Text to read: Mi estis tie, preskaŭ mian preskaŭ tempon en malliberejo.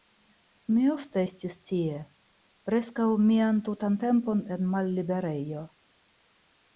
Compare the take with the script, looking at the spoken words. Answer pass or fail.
fail